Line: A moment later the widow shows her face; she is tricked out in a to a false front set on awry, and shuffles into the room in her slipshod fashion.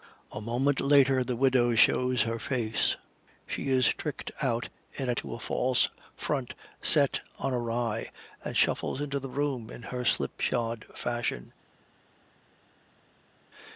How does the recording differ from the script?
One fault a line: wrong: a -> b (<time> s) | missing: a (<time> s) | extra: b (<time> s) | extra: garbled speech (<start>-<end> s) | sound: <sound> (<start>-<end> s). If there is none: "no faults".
no faults